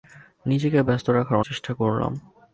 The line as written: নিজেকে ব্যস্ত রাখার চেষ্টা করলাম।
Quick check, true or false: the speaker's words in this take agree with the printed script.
true